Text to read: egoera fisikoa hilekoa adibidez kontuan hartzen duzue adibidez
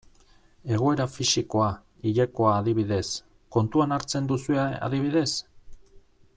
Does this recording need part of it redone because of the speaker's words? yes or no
no